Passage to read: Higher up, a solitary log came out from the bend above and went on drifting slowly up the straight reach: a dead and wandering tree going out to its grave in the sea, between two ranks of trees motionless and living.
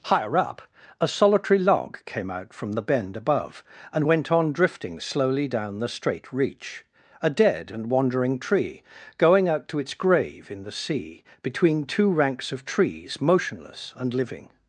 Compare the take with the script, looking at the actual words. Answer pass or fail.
fail